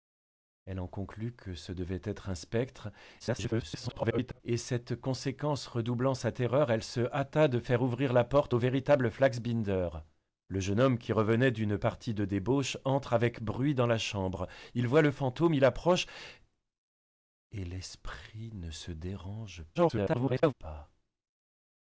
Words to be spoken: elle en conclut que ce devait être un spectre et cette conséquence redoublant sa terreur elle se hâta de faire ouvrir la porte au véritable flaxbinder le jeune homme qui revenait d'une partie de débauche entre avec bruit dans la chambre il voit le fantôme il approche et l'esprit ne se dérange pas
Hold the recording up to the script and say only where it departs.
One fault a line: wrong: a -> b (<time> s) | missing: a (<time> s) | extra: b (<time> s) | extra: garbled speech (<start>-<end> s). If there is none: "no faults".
extra: garbled speech (3.2-4.4 s)
extra: garbled speech (19.8-20.5 s)